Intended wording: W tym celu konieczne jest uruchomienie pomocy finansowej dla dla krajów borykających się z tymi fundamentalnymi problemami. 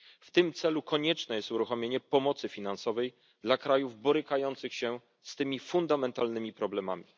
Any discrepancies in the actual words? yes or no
yes